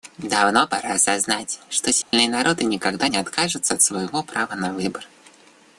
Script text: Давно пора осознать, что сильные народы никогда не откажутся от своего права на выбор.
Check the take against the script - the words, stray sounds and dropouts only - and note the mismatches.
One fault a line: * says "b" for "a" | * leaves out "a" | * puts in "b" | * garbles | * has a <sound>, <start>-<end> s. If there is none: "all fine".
* has a dropout, 2.0-2.1 s